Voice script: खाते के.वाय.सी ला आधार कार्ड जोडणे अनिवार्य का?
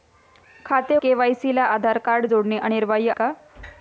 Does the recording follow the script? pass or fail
pass